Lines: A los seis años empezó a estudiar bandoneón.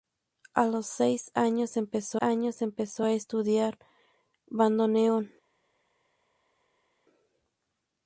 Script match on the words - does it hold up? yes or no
no